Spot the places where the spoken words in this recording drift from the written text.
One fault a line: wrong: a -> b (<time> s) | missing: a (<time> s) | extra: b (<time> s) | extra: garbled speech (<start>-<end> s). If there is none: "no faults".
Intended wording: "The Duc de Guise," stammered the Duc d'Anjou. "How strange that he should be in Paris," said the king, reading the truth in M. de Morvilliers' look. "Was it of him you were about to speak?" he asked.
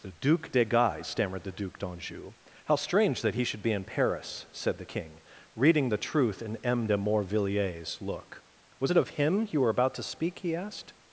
no faults